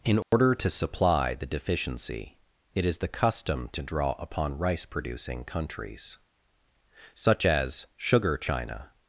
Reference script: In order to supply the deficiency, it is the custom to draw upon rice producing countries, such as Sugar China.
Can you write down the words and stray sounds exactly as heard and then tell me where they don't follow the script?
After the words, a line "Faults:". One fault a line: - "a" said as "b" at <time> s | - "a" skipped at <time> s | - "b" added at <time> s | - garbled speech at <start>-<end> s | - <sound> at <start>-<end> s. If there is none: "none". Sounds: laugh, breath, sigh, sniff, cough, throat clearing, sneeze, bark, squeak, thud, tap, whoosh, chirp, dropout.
In order to supply the deficiency, it is the custom to draw upon rice producing countries, such as Sugar China.
Faults:
- dropout at 0.2-0.3 s